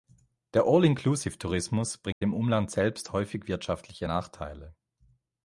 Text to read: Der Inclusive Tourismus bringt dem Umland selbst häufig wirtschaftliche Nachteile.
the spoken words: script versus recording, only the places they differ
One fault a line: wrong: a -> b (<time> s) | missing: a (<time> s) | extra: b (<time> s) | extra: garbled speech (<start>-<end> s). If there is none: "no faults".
extra: All (0.7 s)